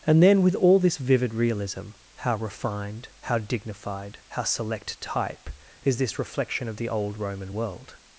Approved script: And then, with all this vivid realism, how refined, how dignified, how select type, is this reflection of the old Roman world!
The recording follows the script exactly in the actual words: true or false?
true